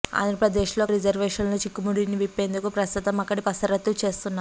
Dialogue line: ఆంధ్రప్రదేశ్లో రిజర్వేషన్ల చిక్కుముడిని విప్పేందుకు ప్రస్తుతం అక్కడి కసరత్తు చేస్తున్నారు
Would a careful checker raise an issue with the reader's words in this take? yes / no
no